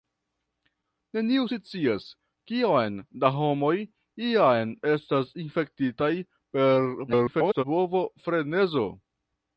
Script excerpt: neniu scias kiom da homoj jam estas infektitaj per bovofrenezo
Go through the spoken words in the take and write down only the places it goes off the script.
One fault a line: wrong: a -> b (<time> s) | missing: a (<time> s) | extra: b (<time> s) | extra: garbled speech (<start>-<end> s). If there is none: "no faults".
extra: garbled speech (7.1-7.6 s)